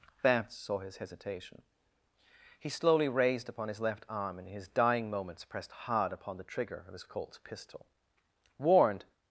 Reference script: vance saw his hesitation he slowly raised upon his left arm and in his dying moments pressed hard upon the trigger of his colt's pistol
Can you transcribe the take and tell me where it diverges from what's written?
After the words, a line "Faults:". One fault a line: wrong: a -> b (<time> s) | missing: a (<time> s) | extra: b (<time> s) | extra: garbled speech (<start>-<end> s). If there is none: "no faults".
vance saw his hesitation he slowly raised upon his left arm and in his dying moments pressed hard upon the trigger of his colt's pistol warned
Faults:
extra: warned (8.6 s)